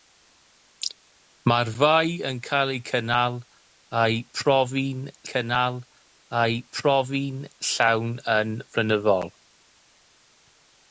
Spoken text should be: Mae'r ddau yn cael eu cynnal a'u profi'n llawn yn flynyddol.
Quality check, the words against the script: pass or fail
fail